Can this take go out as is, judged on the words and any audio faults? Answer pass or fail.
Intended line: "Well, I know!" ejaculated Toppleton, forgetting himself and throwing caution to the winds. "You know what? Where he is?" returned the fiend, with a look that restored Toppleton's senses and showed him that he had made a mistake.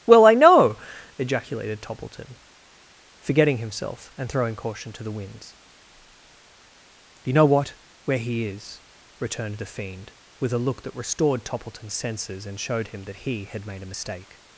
pass